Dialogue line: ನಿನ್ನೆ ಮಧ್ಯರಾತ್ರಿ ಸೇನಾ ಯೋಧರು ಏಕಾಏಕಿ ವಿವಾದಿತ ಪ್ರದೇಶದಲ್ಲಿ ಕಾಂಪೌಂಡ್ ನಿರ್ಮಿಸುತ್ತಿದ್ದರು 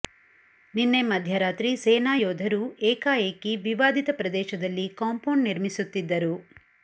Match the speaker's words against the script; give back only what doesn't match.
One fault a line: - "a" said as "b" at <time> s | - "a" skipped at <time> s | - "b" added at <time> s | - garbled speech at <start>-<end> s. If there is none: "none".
none